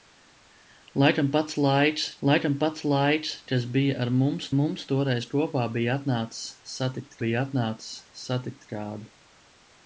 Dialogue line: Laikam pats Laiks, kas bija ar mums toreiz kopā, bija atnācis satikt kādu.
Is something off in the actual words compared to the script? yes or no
yes